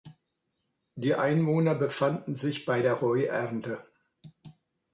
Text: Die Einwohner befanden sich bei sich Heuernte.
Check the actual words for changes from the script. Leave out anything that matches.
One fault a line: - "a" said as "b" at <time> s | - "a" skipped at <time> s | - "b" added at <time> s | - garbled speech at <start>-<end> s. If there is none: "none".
- "sich" said as "der" at 2.8 s